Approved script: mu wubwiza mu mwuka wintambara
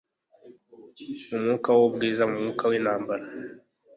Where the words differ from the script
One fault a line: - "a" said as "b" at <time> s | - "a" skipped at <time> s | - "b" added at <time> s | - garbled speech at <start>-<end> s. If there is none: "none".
- "mwuka" added at 1.4 s